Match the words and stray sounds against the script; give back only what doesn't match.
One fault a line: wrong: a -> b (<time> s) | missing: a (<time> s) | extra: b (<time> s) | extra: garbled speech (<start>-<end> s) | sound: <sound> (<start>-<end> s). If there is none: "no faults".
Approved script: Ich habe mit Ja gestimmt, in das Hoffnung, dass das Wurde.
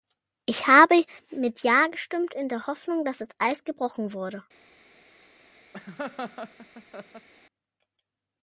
wrong: das -> der (2.5 s)
extra: Eis gebrochen (3.4 s)
sound: laugh (5.7-7.3 s)